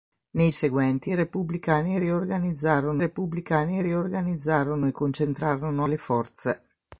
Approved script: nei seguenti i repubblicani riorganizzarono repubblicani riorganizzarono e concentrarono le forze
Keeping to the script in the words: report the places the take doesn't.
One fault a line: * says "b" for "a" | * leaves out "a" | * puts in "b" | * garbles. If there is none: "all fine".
all fine